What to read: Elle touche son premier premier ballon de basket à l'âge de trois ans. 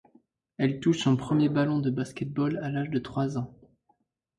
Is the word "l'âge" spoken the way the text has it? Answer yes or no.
yes